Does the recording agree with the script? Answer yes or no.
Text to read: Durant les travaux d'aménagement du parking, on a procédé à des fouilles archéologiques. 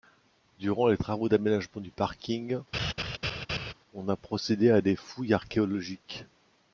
yes